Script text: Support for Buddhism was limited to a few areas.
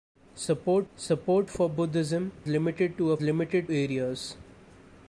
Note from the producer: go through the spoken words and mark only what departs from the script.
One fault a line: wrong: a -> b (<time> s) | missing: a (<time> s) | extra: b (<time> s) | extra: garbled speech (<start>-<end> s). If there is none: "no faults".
extra: support (0.9 s)
missing: was (2.3 s)
wrong: few -> limited (3.2 s)